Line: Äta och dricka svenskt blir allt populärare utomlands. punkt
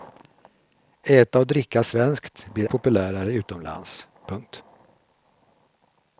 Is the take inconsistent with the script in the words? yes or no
yes